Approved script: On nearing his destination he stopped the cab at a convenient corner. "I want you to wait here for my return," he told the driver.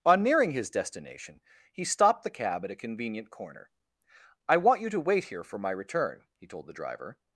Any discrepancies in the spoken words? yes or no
no